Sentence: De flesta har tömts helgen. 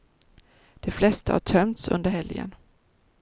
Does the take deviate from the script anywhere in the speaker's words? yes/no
yes